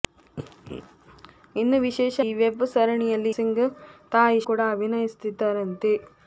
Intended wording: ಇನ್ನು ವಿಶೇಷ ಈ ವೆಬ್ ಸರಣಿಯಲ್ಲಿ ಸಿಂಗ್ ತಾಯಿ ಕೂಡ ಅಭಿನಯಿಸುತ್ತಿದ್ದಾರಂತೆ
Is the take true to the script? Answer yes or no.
yes